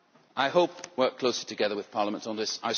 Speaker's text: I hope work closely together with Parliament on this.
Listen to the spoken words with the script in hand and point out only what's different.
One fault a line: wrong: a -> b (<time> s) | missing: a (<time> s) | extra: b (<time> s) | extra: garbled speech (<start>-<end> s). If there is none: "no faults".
no faults